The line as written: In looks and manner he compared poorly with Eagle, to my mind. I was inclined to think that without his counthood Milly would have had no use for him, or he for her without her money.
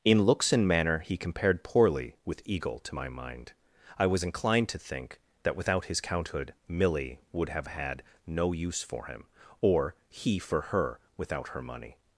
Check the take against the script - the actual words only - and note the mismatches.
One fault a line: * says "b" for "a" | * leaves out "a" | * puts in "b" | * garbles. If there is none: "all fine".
all fine